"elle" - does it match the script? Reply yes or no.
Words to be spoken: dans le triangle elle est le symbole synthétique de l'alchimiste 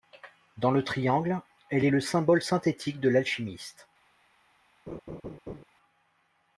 yes